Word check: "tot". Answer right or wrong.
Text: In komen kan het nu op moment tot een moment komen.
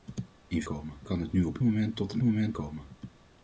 right